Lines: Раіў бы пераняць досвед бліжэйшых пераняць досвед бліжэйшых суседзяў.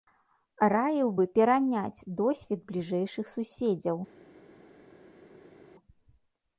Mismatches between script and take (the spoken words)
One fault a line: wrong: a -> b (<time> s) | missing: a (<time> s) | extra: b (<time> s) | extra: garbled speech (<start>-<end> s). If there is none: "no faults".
missing: пераняць досвед бліжэйшых (3.2 s)